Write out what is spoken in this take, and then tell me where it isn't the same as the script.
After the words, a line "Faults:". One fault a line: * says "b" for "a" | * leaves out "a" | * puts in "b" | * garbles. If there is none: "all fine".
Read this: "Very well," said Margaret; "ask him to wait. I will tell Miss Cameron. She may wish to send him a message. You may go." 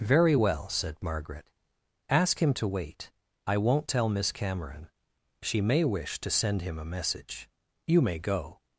"Very well," said Margaret; "ask him to wait. I won't tell Miss Cameron. She may wish to send him a message. You may go."
Faults:
* says "won't" for "will"